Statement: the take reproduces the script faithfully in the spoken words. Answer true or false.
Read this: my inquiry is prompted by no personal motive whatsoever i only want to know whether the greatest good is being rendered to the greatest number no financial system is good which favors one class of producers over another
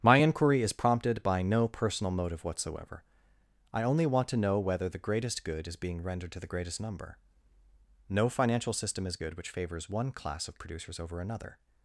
true